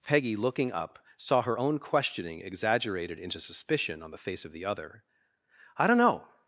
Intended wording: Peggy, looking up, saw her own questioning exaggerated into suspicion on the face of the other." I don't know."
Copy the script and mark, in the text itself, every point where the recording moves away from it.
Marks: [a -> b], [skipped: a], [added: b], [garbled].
Peggy, looking up, saw her own questioning exaggerated into suspicion on the face of the other." I don't know."